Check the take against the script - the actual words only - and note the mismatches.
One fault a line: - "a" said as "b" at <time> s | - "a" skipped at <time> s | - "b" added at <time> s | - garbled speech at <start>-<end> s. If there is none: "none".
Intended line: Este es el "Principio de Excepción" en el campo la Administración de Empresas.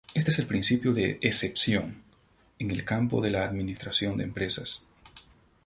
- "de" added at 3.2 s